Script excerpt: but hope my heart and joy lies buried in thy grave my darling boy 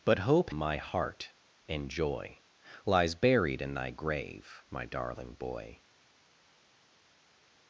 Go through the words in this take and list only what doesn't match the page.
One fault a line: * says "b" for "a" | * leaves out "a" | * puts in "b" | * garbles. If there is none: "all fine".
all fine